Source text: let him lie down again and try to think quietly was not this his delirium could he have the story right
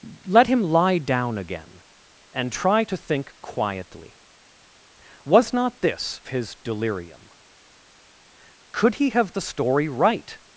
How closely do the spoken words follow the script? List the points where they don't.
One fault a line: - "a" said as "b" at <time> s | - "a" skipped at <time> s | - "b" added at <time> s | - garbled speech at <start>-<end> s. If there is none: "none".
none